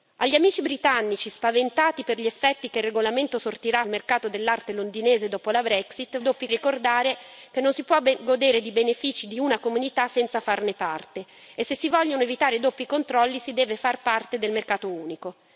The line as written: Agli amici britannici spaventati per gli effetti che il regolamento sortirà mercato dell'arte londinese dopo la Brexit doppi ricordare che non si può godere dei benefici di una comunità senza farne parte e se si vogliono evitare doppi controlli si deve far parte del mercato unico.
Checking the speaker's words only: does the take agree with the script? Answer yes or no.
yes